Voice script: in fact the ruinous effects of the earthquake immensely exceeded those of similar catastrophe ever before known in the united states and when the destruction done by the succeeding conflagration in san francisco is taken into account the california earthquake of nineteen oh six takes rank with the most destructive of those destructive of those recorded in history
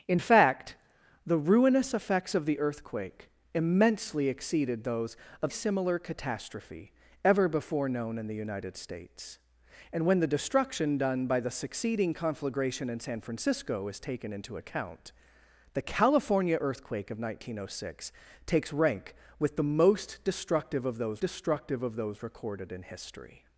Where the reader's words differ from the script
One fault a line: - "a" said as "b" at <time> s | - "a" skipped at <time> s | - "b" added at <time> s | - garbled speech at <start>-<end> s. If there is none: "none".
none